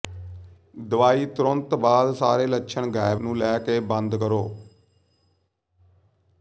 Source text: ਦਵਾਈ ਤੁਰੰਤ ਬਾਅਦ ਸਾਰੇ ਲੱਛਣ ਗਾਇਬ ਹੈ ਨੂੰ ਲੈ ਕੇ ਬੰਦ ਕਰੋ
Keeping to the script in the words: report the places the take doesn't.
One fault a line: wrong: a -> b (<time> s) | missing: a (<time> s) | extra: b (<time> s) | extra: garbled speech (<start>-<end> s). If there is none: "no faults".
missing: ਹੈ (3.2 s)